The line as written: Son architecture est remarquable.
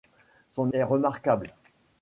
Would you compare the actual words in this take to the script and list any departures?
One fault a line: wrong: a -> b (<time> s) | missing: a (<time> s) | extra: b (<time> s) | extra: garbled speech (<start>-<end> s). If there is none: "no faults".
missing: architecture (0.7 s)